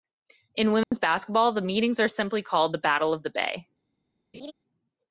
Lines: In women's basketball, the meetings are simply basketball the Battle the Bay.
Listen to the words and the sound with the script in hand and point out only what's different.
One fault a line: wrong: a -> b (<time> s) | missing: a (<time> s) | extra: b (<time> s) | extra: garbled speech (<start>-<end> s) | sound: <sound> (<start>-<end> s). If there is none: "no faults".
sound: dropout (0.8-0.9 s)
wrong: basketball -> called (2.4 s)
extra: of (3.1 s)
sound: laugh (4.3-4.5 s)